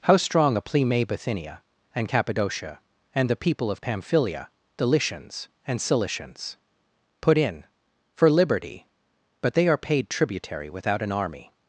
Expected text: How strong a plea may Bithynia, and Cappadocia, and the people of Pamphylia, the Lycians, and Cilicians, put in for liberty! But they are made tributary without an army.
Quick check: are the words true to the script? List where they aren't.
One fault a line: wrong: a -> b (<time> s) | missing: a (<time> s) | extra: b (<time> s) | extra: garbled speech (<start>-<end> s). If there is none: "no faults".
wrong: made -> paid (9.8 s)